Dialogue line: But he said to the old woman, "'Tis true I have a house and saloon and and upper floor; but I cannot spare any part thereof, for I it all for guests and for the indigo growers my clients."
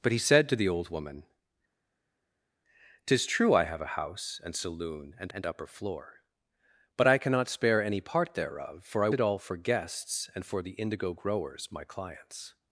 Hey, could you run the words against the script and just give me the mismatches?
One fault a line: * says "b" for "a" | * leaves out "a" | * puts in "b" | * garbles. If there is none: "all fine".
all fine